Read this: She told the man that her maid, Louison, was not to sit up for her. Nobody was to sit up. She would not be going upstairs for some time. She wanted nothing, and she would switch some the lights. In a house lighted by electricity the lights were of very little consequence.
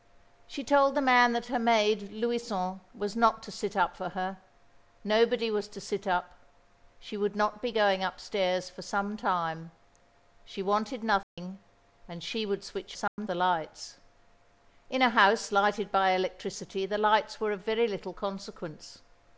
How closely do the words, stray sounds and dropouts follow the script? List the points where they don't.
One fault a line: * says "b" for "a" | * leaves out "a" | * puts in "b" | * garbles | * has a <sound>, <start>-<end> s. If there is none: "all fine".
* has a dropout, 11.2-11.4 s
* has a dropout, 13.1-13.2 s